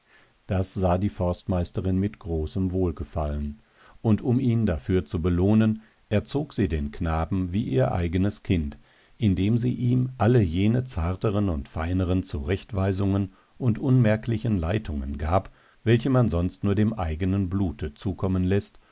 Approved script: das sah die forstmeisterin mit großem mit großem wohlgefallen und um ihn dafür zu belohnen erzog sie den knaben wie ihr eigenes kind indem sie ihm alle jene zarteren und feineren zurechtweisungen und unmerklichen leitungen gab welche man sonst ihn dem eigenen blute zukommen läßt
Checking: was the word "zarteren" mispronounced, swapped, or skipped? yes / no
no